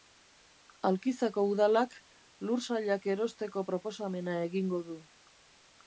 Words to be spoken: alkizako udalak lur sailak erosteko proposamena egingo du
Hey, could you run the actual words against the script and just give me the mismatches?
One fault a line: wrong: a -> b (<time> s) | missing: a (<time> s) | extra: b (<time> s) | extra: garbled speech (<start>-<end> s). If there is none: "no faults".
no faults